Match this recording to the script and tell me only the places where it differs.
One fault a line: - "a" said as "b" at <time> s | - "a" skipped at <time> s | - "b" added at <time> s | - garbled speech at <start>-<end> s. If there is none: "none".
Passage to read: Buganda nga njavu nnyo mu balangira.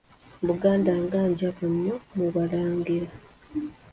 none